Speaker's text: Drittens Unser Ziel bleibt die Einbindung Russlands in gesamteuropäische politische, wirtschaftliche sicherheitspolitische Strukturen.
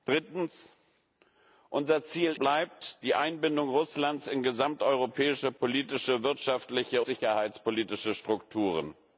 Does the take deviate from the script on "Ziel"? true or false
false